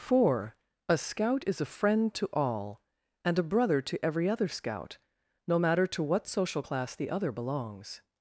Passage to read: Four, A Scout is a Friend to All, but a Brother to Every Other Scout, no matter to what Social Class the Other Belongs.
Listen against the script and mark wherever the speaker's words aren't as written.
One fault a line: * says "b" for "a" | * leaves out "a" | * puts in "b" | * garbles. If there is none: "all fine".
* says "and" for "but"